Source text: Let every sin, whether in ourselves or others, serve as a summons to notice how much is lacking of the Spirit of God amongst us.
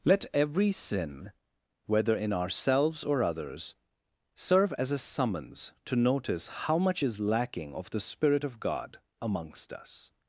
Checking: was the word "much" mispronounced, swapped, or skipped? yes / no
no